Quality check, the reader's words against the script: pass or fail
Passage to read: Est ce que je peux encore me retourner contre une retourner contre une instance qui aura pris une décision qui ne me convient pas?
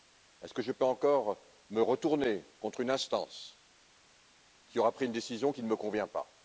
fail